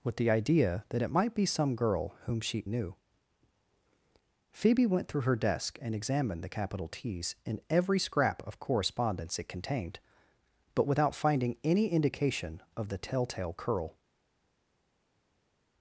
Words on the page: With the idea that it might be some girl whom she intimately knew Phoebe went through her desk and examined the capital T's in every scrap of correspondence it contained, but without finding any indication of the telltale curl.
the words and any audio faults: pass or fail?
fail